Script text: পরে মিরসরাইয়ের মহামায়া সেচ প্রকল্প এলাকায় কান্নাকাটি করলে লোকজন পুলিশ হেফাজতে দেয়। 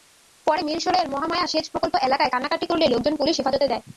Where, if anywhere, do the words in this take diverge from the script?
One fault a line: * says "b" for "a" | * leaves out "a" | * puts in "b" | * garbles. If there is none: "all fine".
all fine